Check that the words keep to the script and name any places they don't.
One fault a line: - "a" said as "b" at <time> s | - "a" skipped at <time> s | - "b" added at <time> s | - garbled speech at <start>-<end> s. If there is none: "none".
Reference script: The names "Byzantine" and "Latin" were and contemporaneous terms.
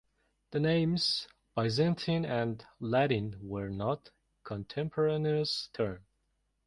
- "and" said as "not" at 3.7 s